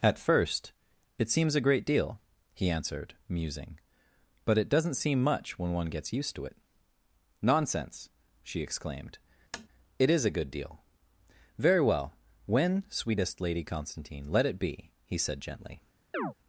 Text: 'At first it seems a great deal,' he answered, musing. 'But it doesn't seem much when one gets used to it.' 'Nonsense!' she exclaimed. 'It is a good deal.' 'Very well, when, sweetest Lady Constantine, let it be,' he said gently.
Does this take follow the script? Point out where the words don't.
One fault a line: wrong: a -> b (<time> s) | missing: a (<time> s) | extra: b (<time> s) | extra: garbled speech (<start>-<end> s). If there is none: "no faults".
no faults